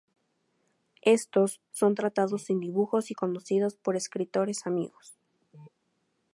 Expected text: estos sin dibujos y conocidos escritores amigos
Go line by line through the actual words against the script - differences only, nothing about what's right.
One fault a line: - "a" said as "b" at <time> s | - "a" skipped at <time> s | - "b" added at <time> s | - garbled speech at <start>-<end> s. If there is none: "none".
- "son tratados" added at 1.7 s
- "por" added at 3.7 s